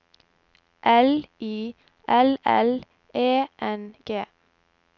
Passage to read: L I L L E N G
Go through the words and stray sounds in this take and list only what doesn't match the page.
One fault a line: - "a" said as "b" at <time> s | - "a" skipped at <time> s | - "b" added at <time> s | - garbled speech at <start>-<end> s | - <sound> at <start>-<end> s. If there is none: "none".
none